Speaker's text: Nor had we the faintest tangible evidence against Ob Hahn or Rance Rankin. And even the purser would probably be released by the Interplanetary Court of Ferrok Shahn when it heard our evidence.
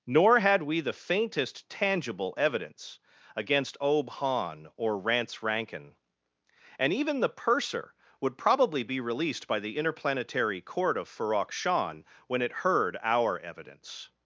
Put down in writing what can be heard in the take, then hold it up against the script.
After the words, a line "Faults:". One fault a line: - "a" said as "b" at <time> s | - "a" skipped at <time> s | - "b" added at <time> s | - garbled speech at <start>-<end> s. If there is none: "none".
Nor had we the faintest tangible evidence against Ob Hahn or Rance Rankin. And even the purser would probably be released by the Interplanetary Court of Ferrok Shahn when it heard our evidence.
Faults:
none